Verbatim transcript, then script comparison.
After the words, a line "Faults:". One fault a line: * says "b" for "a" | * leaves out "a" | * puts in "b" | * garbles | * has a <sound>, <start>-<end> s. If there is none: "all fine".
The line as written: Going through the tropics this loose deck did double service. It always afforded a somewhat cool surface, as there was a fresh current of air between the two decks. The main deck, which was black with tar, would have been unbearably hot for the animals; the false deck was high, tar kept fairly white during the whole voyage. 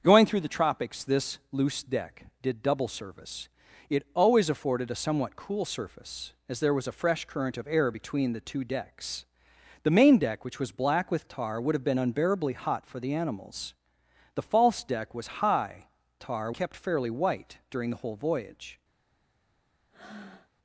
Going through the tropics this loose deck did double service. It always afforded a somewhat cool surface, as there was a fresh current of air between the two decks. The main deck, which was black with tar, would have been unbearably hot for the animals; the false deck was high, tar kept fairly white during the whole voyage.
Faults:
* has a breath, 19.9-20.5 s